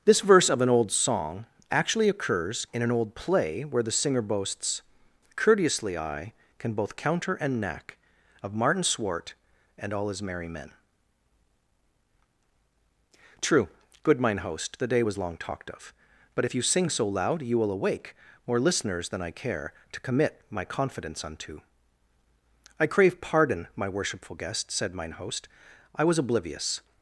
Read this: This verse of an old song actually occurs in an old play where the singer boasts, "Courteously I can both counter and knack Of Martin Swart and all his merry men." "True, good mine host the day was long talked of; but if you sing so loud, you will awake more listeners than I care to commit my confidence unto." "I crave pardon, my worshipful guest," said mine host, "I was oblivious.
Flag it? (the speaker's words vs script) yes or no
no